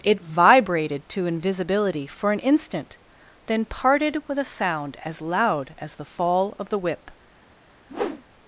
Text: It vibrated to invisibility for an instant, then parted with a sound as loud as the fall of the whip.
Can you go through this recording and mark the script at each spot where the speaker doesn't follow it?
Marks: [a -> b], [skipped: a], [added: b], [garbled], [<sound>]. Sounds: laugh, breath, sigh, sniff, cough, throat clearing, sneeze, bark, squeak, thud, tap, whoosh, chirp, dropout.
It vibrated to invisibility for an instant, then parted with a sound as loud as the fall of the whip. [whoosh]